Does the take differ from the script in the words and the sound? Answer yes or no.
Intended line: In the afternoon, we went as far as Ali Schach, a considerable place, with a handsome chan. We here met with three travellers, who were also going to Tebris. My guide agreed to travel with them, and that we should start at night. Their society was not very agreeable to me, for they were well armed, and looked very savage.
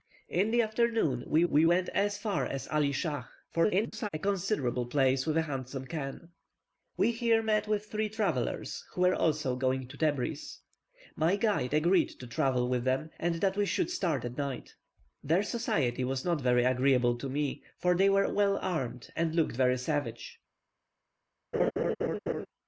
yes